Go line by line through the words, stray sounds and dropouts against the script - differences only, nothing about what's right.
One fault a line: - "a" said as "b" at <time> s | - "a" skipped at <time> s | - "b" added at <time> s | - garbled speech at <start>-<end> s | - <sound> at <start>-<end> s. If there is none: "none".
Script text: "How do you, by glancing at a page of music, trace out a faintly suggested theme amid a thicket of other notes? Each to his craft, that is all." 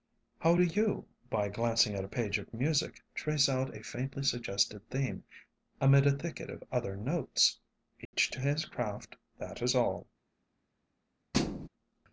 - dropout at 8.1-8.1 s
- thud at 11.3-11.7 s